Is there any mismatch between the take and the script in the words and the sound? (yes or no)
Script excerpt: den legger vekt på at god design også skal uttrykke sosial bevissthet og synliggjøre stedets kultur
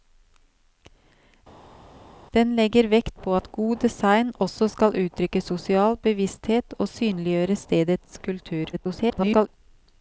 yes